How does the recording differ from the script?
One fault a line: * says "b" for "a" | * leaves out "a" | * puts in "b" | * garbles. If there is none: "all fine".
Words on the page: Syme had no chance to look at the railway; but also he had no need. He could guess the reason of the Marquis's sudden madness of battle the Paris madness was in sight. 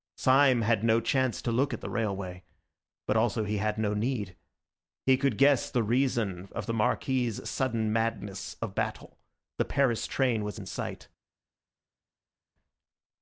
* says "train" for "madness"